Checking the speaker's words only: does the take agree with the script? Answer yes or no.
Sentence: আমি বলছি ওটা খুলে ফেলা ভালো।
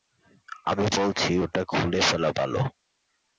yes